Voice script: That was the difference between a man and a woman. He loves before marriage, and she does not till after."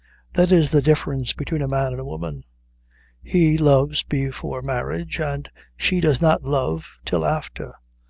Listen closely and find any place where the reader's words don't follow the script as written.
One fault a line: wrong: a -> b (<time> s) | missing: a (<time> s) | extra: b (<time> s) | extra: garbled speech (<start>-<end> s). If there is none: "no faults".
wrong: was -> is (0.5 s)
extra: love (6.4 s)